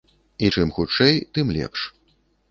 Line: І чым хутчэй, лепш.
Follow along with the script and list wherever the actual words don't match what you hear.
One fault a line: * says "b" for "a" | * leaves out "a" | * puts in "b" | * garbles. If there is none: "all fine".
* puts in "тым"